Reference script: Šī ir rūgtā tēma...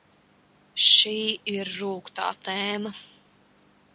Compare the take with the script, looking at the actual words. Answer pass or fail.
pass